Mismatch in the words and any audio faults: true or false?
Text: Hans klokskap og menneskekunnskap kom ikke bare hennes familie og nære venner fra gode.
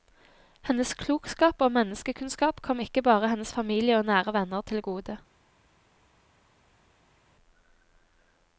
true